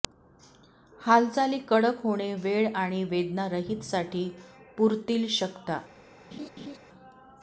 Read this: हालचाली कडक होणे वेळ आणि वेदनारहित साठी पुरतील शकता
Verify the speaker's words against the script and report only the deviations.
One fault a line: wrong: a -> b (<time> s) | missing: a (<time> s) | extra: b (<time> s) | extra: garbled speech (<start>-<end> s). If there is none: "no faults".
no faults